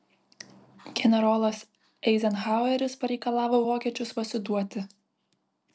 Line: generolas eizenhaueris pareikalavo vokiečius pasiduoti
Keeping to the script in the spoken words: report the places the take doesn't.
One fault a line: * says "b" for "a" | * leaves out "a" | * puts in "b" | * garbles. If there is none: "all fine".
all fine